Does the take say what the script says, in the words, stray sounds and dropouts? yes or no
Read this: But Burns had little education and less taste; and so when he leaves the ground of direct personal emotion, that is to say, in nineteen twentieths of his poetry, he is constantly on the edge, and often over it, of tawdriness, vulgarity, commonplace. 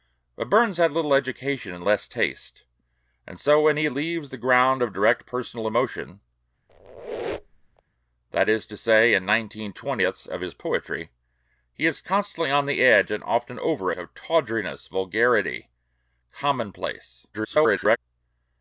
no